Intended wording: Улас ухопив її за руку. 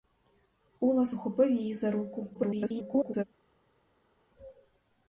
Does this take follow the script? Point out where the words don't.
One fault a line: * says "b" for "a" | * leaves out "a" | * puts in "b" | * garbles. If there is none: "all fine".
* garbles